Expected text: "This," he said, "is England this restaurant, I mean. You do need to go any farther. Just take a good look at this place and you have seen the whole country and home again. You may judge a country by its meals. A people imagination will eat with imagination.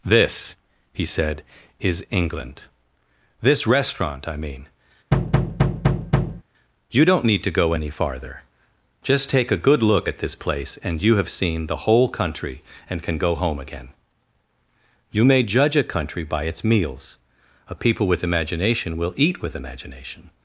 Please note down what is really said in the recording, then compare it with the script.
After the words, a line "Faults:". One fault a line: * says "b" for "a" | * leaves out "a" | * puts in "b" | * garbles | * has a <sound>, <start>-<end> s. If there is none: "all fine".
"This," he said, "is England this restaurant, I mean. You don't need to go any farther. Just take a good look at this place and you have seen the whole country and can go home again. You may judge a country by its meals. A people with imagination will eat with imagination.
Faults:
* has a thud, 5.1-6.4 s
* says "don't" for "do"
* puts in "can go"
* puts in "with"